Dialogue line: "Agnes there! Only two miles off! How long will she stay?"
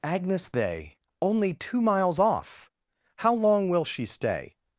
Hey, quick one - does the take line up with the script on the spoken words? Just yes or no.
no